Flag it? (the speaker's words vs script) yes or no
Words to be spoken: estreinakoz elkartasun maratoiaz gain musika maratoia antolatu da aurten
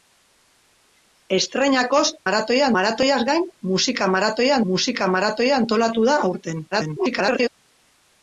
yes